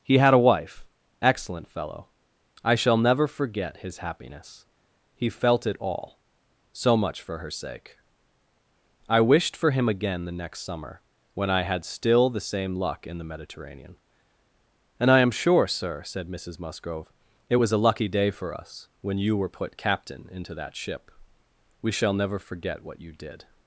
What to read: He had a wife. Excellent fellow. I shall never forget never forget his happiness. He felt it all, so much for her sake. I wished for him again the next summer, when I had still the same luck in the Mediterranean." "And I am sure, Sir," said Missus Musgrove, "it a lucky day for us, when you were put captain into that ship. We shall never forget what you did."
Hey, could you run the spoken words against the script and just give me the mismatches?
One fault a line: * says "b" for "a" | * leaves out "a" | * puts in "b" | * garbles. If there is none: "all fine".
* leaves out "never forget"
* puts in "was"